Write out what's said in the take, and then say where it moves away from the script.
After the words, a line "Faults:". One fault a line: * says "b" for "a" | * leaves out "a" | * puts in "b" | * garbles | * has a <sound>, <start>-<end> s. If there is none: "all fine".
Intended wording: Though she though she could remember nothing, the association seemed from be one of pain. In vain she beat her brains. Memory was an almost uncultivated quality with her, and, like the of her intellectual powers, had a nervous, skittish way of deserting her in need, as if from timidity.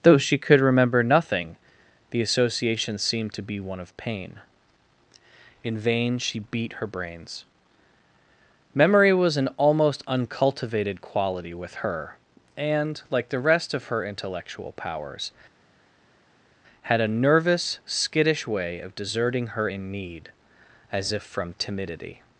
Though she could remember nothing, the association seemed to be one of pain. In vain she beat her brains. Memory was an almost uncultivated quality with her, and, like the rest of her intellectual powers, had a nervous, skittish way of deserting her in need, as if from timidity.
Faults:
* leaves out "though she"
* says "to" for "from"
* puts in "rest"